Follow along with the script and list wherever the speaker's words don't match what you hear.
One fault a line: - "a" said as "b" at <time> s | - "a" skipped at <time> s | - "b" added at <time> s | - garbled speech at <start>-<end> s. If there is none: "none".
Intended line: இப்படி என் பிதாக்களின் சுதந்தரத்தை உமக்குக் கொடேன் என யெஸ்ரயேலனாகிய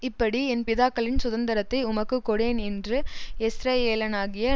- "என" said as "என்று" at 2.6 s